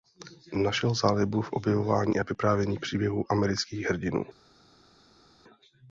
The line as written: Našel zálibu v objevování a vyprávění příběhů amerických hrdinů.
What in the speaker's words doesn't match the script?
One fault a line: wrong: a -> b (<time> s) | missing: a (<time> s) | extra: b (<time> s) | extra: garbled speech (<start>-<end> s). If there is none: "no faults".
no faults